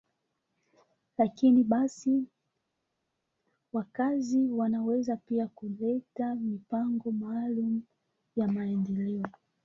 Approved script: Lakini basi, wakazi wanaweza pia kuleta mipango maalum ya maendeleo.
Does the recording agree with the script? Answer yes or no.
yes